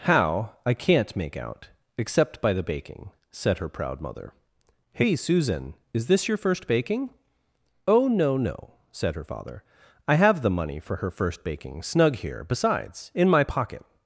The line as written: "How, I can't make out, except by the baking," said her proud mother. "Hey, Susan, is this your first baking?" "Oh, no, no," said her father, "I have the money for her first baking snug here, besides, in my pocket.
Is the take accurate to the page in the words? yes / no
yes